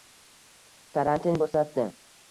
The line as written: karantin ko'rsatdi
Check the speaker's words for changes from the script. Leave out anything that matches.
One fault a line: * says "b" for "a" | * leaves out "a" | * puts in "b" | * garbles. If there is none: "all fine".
all fine